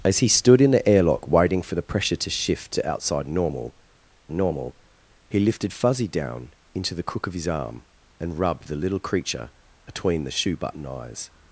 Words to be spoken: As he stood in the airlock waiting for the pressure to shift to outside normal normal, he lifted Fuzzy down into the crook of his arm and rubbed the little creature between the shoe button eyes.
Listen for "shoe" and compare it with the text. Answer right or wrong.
right